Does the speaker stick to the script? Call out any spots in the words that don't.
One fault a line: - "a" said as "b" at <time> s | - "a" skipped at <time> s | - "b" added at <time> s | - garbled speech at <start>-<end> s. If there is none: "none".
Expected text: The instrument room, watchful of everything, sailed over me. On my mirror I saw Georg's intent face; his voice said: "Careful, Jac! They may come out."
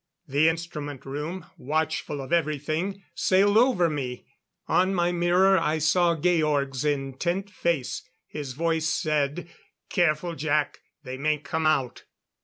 none